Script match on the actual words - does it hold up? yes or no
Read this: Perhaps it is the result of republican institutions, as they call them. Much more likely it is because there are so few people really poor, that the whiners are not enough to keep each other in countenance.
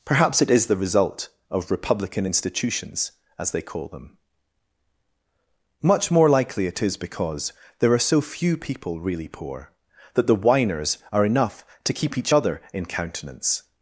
no